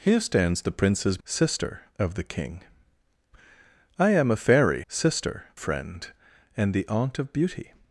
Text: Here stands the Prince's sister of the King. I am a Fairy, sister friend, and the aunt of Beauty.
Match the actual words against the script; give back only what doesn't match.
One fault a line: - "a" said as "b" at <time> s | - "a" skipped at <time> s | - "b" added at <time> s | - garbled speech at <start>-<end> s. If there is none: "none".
none